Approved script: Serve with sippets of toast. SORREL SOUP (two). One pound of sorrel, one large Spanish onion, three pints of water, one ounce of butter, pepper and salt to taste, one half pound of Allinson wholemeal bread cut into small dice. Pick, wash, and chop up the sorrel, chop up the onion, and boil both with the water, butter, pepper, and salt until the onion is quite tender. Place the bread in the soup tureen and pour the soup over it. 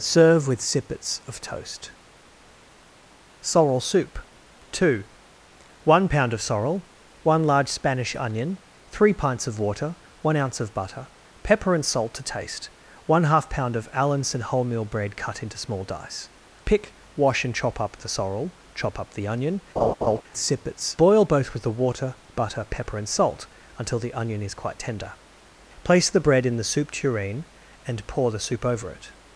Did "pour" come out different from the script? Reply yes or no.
no